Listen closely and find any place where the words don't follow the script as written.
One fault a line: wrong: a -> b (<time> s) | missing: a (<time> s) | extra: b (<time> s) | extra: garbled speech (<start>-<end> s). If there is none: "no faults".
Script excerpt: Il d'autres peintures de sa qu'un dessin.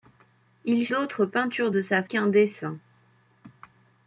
no faults